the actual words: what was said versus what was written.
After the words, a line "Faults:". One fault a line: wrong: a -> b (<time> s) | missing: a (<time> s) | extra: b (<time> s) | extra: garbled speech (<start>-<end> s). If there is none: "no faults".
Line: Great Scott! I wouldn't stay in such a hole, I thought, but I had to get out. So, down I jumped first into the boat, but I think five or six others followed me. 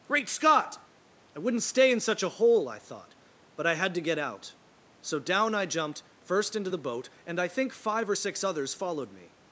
Great Scott! I wouldn't stay in such a hole, I thought, but I had to get out. So, down I jumped first into the boat, and I think five or six others followed me.
Faults:
wrong: but -> and (7.3 s)